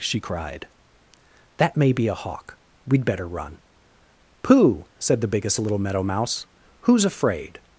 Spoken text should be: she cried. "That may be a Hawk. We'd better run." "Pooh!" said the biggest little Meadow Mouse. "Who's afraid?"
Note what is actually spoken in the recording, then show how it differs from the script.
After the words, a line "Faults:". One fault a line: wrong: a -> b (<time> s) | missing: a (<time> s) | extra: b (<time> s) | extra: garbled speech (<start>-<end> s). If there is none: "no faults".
she cried. "That may be a Hawk. We'd better run." "Pooh!" said the biggest little Meadow Mouse. "Who's afraid?"
Faults:
no faults